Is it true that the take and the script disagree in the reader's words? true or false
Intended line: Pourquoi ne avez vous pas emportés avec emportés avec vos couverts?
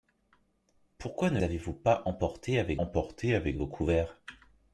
false